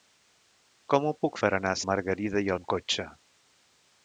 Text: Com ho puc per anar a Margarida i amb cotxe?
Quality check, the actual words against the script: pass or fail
pass